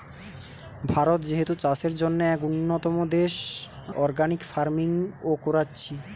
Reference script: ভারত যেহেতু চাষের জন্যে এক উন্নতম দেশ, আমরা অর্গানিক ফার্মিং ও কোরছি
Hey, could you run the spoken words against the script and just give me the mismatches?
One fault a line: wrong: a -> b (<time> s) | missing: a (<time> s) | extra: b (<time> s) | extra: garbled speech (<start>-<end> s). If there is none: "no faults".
missing: আমরা (3.3 s)